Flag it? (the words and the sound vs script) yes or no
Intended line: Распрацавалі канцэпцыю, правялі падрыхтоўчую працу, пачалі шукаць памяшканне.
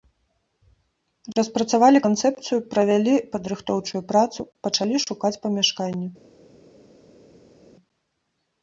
no